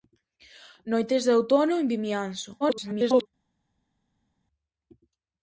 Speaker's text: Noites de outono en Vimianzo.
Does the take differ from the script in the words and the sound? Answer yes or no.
yes